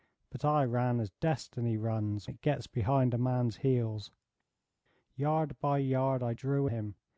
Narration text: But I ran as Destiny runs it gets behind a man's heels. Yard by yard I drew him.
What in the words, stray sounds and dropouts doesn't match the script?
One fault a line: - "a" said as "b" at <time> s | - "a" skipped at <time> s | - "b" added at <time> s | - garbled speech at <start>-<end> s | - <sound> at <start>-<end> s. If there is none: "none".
none